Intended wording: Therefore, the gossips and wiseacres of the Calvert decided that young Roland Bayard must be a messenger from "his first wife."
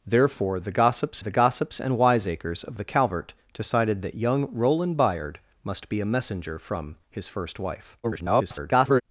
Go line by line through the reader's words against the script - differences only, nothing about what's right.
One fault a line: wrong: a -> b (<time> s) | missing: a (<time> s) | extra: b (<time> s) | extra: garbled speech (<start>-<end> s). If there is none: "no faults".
extra: the gossips (1.2 s)
extra: garbled speech (8.0-9.0 s)